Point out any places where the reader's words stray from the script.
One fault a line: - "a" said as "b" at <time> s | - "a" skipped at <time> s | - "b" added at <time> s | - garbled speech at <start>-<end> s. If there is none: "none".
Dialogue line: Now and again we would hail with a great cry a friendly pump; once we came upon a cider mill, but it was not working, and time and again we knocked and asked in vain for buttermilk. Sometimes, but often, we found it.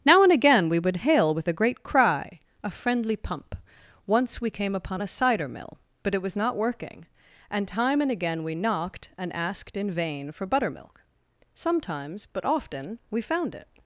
none